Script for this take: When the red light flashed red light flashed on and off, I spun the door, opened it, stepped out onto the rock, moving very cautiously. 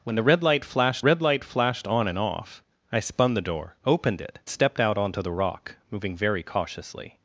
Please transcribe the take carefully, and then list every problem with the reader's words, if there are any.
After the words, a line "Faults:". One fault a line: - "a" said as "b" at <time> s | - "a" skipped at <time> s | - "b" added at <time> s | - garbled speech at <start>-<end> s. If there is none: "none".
When the red light flashed red light flashed on and off, I spun the door, opened it, stepped out onto the rock, moving very cautiously.
Faults:
none